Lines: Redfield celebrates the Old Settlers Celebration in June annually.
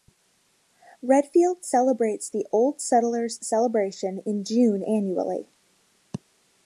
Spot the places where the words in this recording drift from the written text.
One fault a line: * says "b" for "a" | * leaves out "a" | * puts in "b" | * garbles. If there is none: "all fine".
all fine